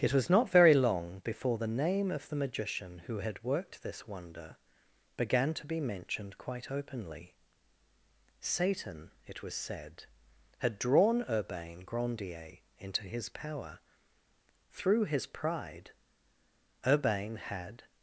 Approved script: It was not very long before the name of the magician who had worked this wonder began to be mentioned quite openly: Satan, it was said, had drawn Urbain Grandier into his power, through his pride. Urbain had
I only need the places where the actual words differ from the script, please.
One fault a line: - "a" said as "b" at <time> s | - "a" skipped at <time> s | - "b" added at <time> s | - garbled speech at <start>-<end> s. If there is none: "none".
none